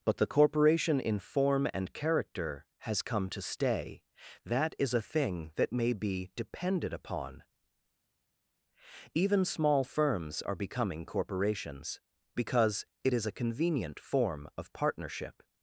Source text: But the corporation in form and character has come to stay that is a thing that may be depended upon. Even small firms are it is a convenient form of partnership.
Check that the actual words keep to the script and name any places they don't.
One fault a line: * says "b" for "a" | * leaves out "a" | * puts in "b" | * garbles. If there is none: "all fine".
* puts in "becoming corporations because"